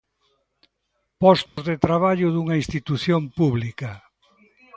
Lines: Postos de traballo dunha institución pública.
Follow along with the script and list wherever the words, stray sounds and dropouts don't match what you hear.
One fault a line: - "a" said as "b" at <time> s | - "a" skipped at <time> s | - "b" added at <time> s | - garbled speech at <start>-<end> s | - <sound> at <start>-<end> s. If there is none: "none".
- dropout at 1.5-1.6 s